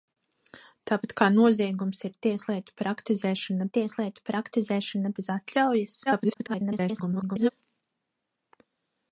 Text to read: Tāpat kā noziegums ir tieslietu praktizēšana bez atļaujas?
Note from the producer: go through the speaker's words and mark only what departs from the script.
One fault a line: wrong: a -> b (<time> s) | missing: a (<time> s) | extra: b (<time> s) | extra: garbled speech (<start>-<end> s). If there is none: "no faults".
extra: tieslietu praktizēšana (3.8 s)
extra: garbled speech (6.1-7.5 s)